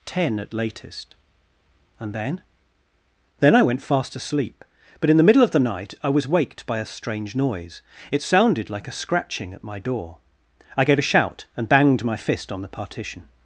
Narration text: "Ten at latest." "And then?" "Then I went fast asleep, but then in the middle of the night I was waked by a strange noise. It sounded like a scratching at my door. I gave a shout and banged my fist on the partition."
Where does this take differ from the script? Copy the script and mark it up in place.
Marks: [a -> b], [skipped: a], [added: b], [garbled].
"Ten at latest." "And then?" "Then I went fast asleep, but [skipped: then] in the middle of the night I was waked by a strange noise. It sounded like a scratching at my door. I gave a shout and banged my fist on the partition."